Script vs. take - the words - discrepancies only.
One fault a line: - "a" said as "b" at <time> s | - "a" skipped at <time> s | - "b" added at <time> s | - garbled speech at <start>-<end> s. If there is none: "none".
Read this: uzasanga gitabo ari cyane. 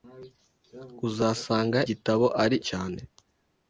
none